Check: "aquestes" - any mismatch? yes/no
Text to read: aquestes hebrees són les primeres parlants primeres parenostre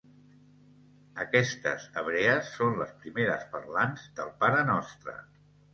no